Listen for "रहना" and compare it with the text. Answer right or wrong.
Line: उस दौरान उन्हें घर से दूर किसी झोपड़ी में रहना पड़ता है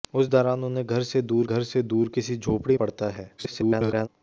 wrong